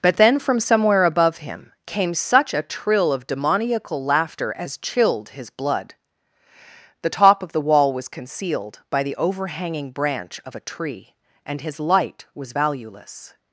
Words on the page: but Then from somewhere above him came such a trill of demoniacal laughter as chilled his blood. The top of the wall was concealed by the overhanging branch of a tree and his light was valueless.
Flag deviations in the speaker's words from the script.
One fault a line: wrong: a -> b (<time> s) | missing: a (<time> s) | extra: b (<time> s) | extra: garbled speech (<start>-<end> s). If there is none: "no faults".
no faults